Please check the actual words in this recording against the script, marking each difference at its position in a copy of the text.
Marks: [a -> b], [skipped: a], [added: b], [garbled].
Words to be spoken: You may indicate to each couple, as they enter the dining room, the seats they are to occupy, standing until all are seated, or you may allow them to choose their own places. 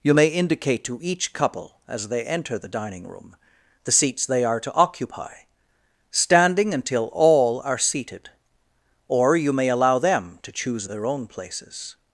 You may indicate to each couple, as they enter the dining room, the seats they are to occupy, standing until all are seated, or you may allow them to choose their own places.